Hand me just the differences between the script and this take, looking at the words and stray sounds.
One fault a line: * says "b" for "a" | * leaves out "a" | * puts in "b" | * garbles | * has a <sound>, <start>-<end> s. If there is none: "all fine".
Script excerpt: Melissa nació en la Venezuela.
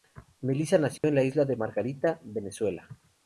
* has a dropout, 1.0-1.0 s
* puts in "Isla de Margarita"